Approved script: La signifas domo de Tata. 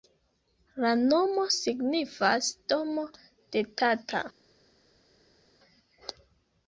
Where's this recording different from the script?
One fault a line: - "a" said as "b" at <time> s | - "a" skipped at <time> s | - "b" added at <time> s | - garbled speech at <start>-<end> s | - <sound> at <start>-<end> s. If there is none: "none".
- "nomo" added at 1.0 s